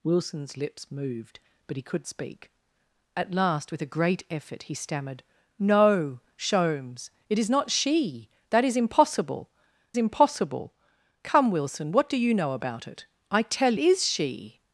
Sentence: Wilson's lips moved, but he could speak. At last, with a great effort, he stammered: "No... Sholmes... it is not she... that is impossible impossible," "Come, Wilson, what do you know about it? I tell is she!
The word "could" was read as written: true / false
true